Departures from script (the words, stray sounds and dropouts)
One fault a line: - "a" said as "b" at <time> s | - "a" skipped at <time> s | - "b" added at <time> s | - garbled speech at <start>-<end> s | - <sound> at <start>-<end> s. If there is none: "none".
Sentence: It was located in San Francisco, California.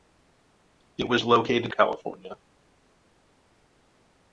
- "in San Francisco" skipped at 1.7 s